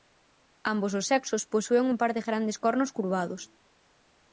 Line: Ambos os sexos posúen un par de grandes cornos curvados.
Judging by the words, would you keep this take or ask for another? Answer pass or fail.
pass